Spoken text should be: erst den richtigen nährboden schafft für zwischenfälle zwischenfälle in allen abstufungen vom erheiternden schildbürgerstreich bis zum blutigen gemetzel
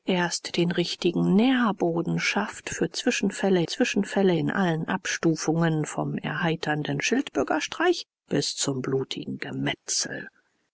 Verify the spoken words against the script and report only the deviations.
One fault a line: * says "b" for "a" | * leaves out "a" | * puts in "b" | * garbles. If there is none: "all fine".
all fine